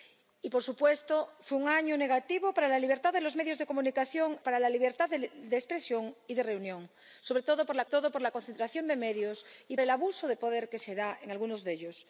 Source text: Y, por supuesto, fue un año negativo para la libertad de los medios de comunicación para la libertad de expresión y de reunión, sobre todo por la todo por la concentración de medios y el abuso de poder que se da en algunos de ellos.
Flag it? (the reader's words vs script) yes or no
no